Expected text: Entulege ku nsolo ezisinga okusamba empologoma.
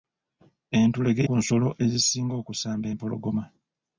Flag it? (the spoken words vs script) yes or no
no